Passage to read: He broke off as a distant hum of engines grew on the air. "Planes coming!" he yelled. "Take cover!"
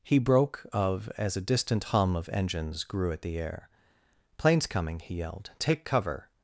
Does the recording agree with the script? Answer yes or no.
no